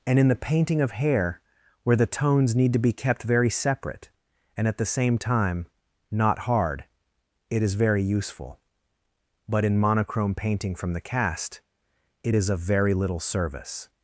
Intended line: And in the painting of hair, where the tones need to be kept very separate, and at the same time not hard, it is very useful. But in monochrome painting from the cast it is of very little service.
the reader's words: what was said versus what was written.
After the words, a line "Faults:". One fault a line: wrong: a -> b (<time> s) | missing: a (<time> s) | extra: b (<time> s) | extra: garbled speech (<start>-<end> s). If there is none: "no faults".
And in the painting of hair, where the tones need to be kept very separate, and at the same time not hard, it is very useful. But in monochrome painting from the cast it is of very little service.
Faults:
no faults